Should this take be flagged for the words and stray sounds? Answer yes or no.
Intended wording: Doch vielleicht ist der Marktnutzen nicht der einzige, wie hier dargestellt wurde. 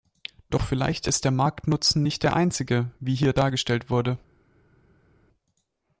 no